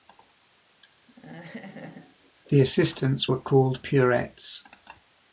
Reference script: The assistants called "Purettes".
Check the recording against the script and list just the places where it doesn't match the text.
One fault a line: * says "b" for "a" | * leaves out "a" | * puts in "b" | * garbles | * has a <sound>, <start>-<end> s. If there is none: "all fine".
* has a laugh, 1.1-2.3 s
* puts in "were"